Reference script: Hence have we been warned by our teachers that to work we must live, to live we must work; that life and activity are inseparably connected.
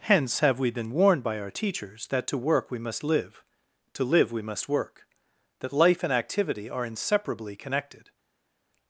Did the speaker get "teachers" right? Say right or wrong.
right